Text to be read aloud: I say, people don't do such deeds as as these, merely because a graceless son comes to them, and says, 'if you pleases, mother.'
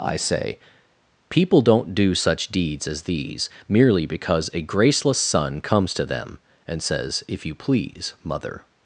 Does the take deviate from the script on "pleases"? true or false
true